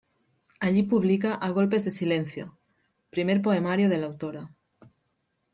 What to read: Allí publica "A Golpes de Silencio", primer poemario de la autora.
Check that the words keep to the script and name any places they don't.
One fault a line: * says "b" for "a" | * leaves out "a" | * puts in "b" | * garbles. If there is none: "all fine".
all fine